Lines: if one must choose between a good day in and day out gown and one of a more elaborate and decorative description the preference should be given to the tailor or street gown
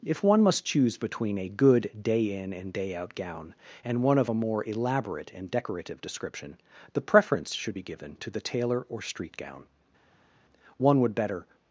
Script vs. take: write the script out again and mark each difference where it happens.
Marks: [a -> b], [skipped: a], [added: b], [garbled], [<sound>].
if one must choose between a good day in and day out gown and one of a more elaborate and decorative description the preference should be given to the tailor or street gown [added: one would better]